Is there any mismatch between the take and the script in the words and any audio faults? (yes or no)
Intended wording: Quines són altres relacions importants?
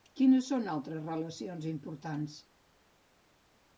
no